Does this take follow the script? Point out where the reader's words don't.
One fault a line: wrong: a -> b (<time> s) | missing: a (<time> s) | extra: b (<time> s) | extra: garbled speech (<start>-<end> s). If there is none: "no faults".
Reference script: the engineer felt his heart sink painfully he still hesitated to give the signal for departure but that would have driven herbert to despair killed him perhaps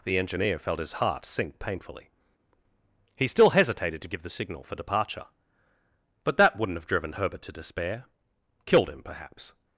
wrong: would -> wouldn't (6.6 s)